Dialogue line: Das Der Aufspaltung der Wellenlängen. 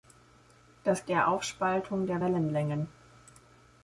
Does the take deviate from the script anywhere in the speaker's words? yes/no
no